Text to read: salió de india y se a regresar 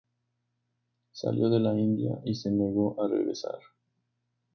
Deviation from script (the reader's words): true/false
true